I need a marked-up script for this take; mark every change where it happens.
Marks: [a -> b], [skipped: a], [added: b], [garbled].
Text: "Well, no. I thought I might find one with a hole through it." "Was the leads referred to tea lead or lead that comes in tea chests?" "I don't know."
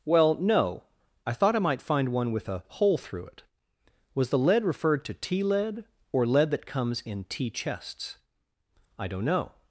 "Well, no. I thought I might find one with a hole through it." "Was the [leads -> lead] referred to tea lead or lead that comes in tea chests?" "I don't know."